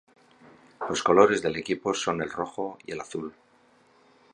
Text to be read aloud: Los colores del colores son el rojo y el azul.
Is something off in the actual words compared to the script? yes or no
yes